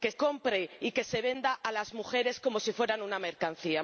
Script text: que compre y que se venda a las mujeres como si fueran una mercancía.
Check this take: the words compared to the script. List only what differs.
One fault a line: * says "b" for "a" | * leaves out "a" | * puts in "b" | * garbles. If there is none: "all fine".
all fine